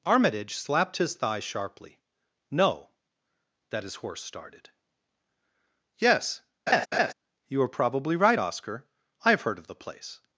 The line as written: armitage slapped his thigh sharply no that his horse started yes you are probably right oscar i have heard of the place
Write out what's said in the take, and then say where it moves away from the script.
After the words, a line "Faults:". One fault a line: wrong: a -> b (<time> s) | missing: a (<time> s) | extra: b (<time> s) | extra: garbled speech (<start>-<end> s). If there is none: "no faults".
armitage slapped his thigh sharply no that his horse started yes you are probably right oscar i have heard of the place
Faults:
no faults